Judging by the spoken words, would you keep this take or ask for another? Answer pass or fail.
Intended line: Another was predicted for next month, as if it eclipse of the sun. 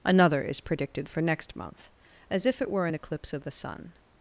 fail